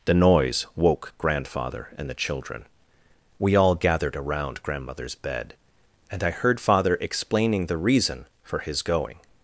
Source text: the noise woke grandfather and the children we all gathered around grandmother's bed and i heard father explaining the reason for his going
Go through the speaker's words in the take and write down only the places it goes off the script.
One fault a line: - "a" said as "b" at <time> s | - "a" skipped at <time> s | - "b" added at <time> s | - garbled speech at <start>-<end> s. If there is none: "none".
none